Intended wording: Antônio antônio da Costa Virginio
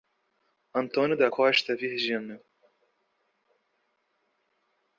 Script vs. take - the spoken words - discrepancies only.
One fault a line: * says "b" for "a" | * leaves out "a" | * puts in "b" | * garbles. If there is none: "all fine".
* leaves out "antônio"